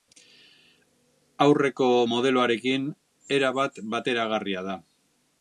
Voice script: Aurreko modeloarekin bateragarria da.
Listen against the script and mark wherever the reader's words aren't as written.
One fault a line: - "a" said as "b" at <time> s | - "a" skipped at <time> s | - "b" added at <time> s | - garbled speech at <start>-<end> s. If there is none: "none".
- "erabat" added at 3.4 s